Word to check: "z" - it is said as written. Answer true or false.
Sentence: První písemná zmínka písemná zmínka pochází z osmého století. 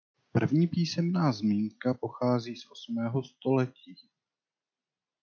true